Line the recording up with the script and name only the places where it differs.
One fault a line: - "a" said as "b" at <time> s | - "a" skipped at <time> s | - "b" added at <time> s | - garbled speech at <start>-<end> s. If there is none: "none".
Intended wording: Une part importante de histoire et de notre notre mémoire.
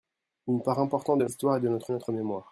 none